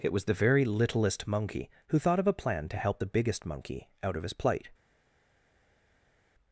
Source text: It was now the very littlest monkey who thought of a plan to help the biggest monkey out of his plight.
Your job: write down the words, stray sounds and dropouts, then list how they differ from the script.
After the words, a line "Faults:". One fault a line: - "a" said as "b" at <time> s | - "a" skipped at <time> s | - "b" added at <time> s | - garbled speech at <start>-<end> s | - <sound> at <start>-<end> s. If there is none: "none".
It was the very littlest monkey who thought of a plan to help the biggest monkey out of his plight.
Faults:
- "now" skipped at 0.2 s